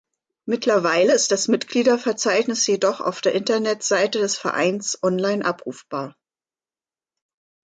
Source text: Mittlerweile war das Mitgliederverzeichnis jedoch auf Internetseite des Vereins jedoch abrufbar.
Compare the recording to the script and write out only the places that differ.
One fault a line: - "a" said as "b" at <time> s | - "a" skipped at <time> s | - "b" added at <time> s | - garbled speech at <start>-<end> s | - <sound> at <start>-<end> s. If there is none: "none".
- "war" said as "ist" at 1.1 s
- "der" added at 3.2 s
- "jedoch" said as "online" at 5.0 s